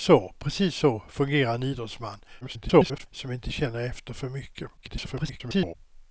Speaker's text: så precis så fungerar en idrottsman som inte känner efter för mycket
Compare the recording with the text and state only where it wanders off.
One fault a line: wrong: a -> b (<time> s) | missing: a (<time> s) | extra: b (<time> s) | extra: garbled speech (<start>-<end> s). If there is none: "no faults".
extra: garbled speech (2.4-3.1 s)
extra: garbled speech (4.8-5.8 s)